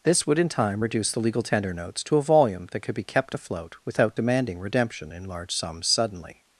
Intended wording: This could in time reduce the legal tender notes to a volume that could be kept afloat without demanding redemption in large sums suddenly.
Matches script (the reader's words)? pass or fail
fail